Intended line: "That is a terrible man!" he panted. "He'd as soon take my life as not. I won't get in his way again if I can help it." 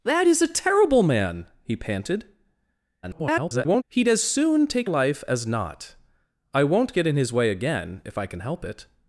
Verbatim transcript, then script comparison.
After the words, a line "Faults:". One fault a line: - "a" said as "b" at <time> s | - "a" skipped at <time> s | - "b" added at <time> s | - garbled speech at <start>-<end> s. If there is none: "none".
"That is a terrible man!" he panted. [garbled] "He'd as soon take life as not. I won't get in his way again if I can help it."
Faults:
- garbled speech at 3.0-3.8 s
- "my" skipped at 4.9 s